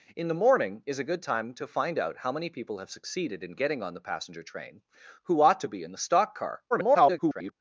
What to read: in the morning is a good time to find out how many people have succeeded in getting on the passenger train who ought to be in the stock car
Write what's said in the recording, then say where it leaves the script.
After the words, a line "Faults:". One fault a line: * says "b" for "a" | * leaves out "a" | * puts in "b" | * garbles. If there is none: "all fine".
in the morning is a good time to find out how many people have succeeded in getting on the passenger train who ought to be in the stock car [garbled]
Faults:
* garbles